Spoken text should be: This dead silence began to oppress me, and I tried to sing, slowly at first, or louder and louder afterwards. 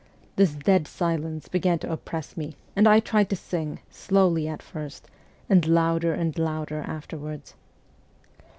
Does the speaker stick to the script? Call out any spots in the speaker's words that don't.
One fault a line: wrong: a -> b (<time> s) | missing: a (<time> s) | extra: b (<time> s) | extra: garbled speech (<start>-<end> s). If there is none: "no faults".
wrong: or -> and (5.5 s)